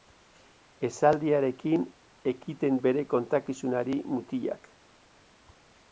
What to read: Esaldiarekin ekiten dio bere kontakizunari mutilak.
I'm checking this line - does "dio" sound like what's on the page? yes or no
no